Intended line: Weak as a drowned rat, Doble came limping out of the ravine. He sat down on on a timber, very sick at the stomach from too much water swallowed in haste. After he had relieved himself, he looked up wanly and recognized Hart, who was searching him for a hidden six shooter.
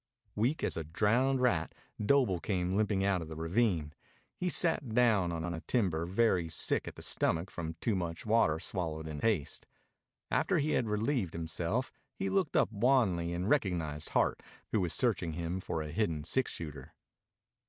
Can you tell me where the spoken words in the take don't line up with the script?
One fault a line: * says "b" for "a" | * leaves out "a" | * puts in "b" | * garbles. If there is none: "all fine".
all fine